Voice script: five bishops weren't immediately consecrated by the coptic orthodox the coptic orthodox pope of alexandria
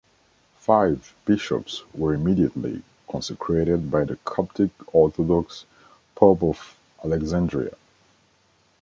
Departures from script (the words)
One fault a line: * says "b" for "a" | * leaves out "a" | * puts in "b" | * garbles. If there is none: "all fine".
* says "were" for "weren't"
* leaves out "the coptic orthodox"